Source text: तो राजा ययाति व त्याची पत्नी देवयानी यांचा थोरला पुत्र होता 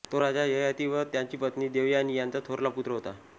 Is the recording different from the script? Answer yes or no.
no